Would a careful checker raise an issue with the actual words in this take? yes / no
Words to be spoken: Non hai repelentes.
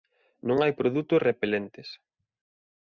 yes